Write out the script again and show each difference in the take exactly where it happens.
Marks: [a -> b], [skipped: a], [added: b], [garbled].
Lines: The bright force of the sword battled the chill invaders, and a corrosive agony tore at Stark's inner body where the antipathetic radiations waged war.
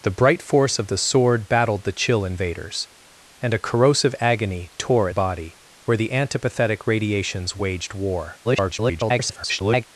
The bright force of the sword battled the chill invaders, and a corrosive agony tore [skipped: at Stark's inner] body where the antipathetic radiations waged war. [garbled]